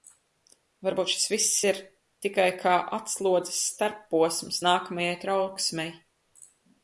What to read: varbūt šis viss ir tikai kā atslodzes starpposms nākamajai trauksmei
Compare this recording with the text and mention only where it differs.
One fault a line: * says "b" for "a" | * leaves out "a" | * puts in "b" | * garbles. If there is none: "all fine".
all fine